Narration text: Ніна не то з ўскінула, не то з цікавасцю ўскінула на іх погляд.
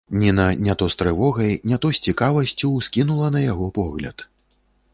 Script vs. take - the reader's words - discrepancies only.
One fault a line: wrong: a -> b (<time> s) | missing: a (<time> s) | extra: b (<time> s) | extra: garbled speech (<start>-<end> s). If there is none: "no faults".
wrong: ўскінула -> трывогай (1.0 s)
wrong: іх -> яго (3.5 s)